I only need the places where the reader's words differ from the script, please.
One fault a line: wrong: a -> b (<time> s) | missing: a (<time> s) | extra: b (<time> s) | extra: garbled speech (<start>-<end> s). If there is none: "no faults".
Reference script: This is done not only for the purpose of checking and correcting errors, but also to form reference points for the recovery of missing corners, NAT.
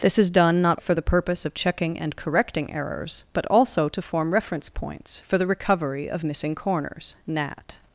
missing: only (0.8 s)